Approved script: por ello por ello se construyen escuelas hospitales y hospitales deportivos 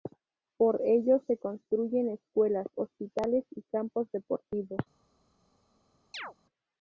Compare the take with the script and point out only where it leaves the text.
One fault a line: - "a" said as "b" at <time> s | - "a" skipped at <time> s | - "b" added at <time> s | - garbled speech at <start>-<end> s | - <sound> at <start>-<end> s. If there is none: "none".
- "por ello" skipped at 1.2 s
- "hospitales" said as "campos" at 3.6 s
- chirp at 6.1-6.3 s